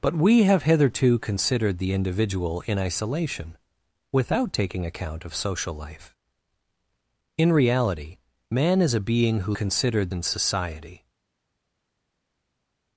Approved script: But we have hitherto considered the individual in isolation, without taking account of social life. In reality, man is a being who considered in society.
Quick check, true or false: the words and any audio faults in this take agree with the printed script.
true